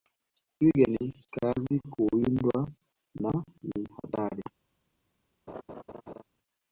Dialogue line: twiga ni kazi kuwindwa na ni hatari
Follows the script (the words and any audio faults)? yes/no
no